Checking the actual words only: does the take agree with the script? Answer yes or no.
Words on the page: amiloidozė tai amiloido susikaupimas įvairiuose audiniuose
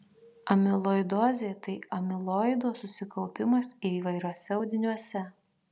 yes